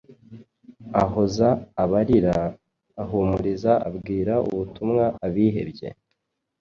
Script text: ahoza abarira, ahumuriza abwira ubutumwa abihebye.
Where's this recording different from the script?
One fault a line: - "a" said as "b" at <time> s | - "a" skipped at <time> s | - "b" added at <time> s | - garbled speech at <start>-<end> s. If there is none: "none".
none